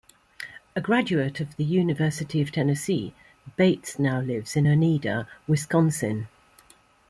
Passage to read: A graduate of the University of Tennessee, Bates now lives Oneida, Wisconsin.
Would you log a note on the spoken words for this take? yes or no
yes